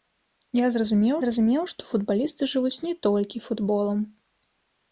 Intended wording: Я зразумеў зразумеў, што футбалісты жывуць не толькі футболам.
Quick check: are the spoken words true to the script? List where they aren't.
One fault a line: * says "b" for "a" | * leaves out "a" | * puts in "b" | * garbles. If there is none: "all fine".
all fine